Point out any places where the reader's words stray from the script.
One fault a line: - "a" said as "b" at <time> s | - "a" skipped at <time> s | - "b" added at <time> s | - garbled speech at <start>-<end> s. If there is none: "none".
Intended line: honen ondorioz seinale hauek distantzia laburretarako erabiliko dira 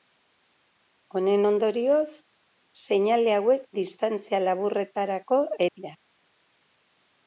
- "erabiliko" skipped at 5.5 s